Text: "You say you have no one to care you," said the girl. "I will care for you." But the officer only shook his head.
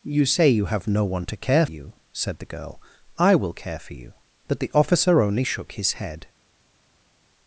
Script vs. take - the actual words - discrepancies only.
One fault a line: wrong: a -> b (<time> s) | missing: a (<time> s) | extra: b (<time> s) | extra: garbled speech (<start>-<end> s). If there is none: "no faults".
no faults